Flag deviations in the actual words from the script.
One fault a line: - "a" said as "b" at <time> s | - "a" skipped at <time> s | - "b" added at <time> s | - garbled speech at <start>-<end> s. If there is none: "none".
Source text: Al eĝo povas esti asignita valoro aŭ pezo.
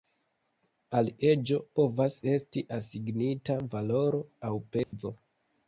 none